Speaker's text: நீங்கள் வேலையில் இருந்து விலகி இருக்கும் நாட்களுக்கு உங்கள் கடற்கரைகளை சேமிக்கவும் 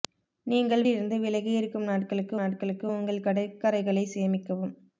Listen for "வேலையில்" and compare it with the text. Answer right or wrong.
wrong